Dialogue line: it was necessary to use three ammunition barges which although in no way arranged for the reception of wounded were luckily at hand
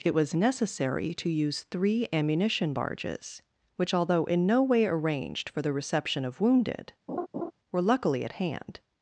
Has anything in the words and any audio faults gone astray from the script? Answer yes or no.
yes